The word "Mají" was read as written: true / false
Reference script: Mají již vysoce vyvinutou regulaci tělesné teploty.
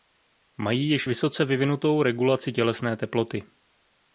true